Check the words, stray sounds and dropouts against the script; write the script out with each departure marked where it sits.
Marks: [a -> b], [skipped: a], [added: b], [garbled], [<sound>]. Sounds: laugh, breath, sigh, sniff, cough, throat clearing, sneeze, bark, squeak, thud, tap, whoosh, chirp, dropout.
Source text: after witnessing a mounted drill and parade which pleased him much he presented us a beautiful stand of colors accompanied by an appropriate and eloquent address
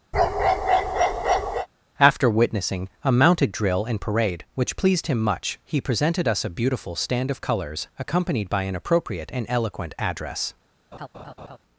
[bark] after witnessing a mounted drill and parade which pleased him much he presented us a beautiful stand of colors accompanied by an appropriate and eloquent address [laugh]